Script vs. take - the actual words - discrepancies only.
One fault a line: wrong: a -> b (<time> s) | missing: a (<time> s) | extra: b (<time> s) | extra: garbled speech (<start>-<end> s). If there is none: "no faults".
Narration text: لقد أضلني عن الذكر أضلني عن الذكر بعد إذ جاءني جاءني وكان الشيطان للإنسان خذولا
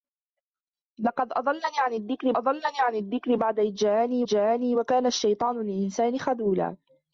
no faults